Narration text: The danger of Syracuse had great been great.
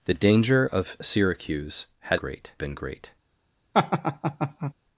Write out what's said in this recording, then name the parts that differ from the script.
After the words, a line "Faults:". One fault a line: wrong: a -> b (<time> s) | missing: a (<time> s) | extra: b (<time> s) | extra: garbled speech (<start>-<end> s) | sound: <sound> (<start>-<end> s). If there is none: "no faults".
The danger of Syracuse had great been great.
Faults:
sound: laugh (3.7-4.7 s)